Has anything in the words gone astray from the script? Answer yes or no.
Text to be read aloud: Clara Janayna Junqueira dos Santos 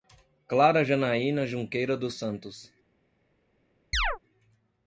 no